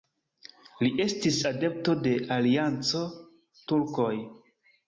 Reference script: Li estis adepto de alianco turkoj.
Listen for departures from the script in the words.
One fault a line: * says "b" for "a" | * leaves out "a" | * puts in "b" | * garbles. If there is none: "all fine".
all fine